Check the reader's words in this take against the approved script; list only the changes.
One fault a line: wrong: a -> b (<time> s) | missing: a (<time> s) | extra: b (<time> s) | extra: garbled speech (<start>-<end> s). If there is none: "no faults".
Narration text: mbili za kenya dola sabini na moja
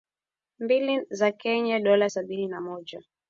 no faults